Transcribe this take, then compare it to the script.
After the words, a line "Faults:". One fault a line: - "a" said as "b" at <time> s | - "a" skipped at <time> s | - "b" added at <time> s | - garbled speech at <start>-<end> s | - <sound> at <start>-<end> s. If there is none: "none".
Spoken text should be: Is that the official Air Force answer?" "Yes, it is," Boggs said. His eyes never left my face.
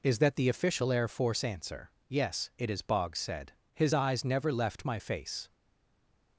Is that the official Air Force answer?" "Yes, it is," Boggs said. His eyes never left my face.
Faults:
none